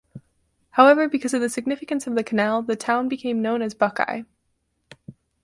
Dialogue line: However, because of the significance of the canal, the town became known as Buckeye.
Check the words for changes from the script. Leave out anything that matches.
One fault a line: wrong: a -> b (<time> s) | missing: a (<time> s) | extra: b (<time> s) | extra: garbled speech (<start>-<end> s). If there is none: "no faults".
no faults